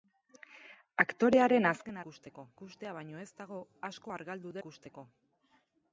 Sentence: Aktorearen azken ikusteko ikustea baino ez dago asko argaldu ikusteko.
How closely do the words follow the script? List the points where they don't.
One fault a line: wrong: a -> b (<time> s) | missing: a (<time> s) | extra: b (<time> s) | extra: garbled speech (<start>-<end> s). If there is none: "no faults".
no faults